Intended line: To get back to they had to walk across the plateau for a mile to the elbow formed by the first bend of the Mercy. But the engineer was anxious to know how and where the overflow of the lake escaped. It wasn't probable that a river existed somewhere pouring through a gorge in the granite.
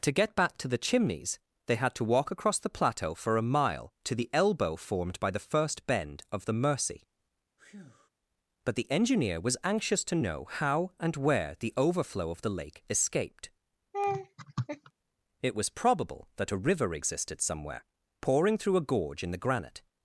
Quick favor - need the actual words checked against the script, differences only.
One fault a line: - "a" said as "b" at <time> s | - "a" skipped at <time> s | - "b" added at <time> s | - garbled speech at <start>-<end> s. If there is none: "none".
- "the Chimneys" added at 0.7 s
- "wasn't" said as "was" at 15.5 s